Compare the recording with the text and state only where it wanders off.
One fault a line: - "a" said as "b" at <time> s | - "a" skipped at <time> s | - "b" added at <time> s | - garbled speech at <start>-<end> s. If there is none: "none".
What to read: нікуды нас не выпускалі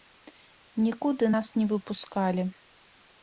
none